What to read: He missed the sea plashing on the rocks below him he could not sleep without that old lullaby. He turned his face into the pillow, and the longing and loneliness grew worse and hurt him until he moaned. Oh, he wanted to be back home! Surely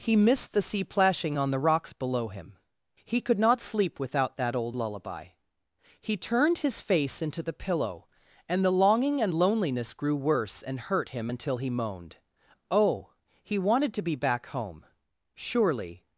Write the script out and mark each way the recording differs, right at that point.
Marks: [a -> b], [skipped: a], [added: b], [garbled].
He missed the sea plashing on the rocks below him he could not sleep without that old lullaby. He turned his face into the pillow, and the longing and loneliness grew worse and hurt him until he moaned. Oh, he wanted to be back home! Surely